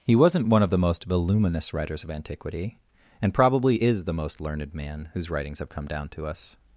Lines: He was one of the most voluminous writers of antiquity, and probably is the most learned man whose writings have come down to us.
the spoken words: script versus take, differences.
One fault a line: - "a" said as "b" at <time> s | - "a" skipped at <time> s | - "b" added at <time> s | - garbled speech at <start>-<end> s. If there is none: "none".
- "was" said as "wasn't" at 0.1 s